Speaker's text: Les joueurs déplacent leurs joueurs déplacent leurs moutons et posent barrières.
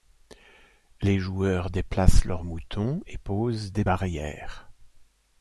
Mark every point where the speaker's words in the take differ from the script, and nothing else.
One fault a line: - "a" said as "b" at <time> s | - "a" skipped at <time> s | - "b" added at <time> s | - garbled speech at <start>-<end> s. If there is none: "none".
- "joueurs déplacent leurs" skipped at 2.4 s
- "des" added at 3.7 s